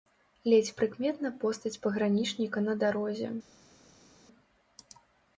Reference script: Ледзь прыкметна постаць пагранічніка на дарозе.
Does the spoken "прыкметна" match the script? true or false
true